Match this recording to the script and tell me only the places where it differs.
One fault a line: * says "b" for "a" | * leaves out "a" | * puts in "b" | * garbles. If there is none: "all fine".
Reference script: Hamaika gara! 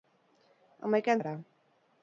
all fine